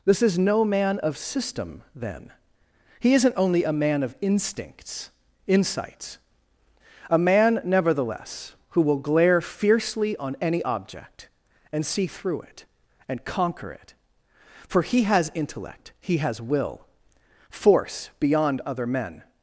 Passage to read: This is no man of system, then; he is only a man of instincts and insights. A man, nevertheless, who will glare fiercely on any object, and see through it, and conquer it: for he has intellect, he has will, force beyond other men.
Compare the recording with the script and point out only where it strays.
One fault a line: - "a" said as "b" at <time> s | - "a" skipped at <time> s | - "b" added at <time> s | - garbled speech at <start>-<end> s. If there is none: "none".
- "is" said as "isn't" at 3.1 s
- "and" skipped at 5.1 s